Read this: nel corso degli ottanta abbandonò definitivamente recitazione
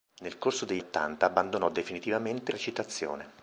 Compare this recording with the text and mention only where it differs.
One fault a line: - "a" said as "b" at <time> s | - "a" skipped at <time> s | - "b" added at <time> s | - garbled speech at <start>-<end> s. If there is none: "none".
none